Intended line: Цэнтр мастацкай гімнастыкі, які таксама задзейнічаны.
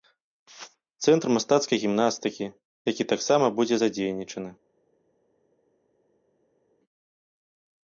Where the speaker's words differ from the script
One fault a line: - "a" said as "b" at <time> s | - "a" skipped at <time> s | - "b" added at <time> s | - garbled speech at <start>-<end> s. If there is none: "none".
- "будзе" added at 3.6 s